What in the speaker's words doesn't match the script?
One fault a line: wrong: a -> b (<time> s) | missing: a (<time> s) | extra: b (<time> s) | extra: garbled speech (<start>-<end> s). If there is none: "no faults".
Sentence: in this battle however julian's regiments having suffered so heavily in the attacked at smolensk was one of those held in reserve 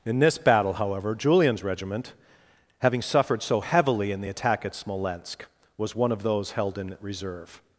wrong: regiments -> regiment (1.6 s)
wrong: attacked -> attack (4.3 s)